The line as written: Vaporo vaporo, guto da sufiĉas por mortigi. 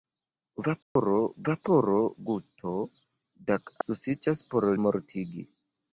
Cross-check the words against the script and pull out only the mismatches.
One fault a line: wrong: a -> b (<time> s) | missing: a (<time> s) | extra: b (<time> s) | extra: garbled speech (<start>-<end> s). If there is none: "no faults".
no faults